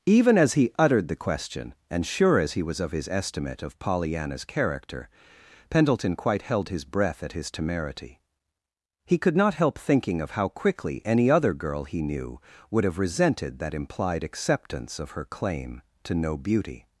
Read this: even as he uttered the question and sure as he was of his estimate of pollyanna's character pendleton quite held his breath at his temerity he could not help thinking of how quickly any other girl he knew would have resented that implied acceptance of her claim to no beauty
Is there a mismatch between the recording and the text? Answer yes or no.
no